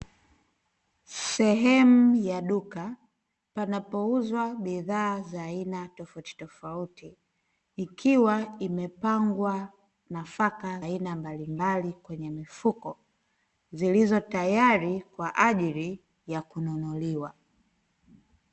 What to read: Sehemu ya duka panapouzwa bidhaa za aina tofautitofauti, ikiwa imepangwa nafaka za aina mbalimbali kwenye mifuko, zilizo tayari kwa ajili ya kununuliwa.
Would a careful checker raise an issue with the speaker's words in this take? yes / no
yes